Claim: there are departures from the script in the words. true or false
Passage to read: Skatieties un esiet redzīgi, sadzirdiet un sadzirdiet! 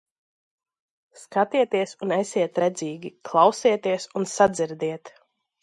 true